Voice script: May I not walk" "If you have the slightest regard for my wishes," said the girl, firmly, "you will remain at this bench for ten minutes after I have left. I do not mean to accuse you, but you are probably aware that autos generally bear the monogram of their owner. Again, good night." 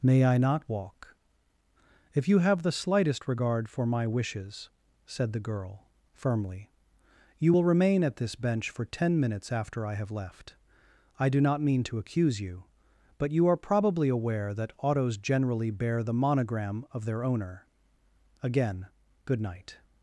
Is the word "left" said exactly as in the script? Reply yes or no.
yes